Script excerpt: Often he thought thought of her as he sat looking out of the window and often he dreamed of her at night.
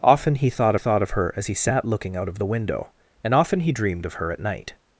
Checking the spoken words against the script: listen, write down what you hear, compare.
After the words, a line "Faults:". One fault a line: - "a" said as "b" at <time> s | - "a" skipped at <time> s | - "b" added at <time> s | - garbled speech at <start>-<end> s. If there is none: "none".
Often he thought thought of her as he sat looking out of the window and often he dreamed of her at night.
Faults:
none